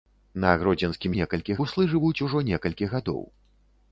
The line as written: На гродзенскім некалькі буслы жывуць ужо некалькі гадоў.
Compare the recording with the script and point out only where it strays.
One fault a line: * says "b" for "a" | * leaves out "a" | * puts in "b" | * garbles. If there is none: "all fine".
all fine